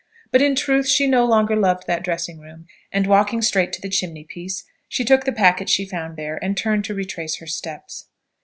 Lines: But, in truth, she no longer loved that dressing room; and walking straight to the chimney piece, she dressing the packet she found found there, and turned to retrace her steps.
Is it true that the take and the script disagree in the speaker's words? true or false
true